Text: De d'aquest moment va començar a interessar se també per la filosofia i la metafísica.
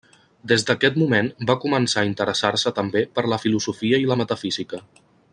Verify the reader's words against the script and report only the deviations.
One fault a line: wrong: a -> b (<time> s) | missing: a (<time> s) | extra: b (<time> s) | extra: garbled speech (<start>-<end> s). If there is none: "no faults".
wrong: De -> Des (0.5 s)